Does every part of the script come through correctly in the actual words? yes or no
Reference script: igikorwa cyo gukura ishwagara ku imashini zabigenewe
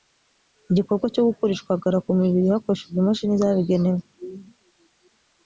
no